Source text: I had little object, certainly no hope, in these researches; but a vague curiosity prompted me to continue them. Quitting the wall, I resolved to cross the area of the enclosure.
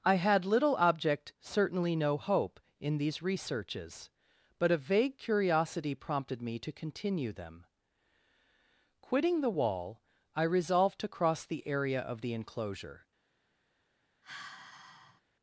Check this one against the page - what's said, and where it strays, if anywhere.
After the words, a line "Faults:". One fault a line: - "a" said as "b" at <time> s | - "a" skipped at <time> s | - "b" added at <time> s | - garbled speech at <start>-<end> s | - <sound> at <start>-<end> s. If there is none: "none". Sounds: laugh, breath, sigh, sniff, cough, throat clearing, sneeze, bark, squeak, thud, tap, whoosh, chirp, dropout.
I had little object, certainly no hope, in these researches; but a vague curiosity prompted me to continue them. Quitting the wall, I resolved to cross the area of the enclosure.
Faults:
- sigh at 14.2-15.2 s